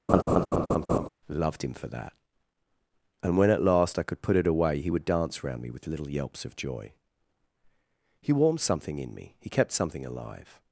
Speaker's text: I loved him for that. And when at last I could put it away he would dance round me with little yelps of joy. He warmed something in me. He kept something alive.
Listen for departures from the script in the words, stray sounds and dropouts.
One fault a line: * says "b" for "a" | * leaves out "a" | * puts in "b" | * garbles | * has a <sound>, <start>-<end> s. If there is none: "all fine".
* has a laugh, 0.1-1.1 s
* leaves out "I"